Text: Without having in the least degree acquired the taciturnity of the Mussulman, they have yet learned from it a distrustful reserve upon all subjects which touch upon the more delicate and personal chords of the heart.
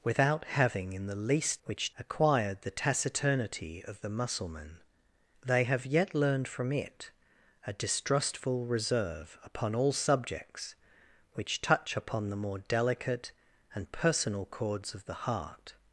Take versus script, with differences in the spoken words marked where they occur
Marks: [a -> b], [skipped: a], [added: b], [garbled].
Without having in the least [degree -> which] acquired the taciturnity of the Mussulman, they have yet learned from it a distrustful reserve upon all subjects which touch upon the more delicate and personal chords of the heart.